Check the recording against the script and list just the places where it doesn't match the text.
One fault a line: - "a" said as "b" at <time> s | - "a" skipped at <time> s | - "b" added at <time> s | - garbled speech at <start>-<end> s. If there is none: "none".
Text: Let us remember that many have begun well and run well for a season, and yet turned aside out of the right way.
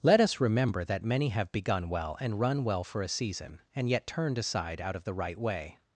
none